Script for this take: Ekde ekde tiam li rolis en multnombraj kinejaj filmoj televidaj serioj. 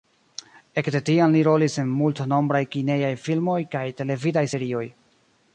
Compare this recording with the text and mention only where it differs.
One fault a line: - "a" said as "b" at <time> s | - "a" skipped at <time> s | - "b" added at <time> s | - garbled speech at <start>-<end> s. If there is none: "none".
- "ekde" skipped at 1.0 s
- "kaj" added at 3.8 s